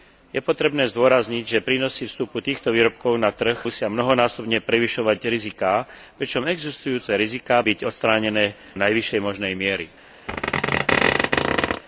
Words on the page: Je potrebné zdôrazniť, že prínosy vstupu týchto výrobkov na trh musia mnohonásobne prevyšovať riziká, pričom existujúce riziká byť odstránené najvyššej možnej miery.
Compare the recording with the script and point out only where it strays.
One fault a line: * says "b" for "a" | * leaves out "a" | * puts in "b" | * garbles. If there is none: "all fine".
all fine